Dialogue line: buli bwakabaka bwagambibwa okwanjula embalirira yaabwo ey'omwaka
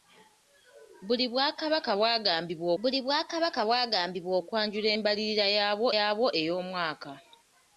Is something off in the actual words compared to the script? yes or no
yes